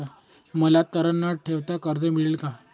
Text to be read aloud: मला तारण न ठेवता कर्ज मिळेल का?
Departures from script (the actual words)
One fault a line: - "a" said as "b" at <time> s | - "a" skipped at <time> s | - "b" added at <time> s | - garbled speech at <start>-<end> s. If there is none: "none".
none